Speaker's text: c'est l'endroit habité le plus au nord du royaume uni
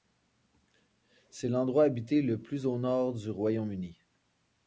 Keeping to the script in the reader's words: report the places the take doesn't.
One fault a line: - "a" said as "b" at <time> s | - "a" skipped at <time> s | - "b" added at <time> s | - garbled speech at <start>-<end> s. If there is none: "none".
none